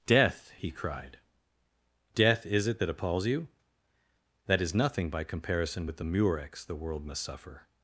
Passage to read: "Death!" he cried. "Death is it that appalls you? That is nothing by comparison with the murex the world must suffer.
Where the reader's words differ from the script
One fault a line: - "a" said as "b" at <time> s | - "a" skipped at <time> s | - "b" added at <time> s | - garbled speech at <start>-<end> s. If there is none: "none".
none